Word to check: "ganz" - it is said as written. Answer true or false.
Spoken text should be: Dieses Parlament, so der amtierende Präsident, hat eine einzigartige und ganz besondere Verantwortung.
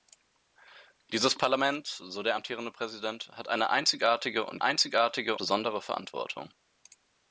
false